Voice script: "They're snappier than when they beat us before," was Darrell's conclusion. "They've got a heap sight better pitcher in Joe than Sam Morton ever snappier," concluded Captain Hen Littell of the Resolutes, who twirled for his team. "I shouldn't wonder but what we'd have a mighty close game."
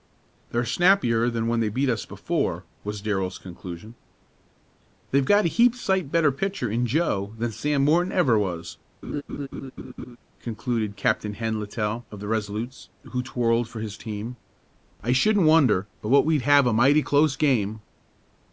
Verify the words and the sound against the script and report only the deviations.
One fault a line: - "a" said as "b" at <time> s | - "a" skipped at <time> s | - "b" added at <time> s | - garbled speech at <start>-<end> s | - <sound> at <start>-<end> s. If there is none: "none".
- "snappier" said as "was" at 8.4 s
- laugh at 9.0-10.2 s